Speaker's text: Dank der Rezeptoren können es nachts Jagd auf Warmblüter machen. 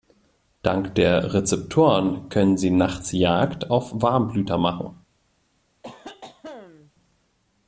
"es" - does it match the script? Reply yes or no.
no